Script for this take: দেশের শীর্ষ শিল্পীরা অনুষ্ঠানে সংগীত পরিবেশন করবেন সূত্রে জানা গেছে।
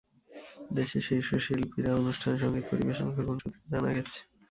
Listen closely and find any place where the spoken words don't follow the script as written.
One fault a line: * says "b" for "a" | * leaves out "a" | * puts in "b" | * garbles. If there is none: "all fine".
all fine